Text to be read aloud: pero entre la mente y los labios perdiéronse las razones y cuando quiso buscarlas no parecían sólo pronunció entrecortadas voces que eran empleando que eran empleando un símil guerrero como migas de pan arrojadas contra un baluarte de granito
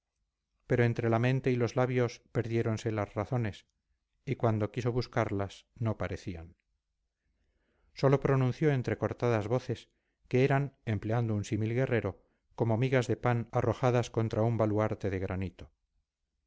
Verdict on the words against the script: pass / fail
fail